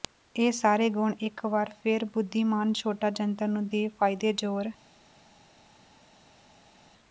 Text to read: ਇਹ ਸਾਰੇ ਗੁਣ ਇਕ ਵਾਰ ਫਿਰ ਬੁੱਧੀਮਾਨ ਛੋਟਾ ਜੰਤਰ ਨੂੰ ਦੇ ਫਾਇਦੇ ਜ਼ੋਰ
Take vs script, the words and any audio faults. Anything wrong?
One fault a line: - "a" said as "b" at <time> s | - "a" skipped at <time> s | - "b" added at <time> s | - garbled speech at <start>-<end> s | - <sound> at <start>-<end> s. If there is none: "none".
none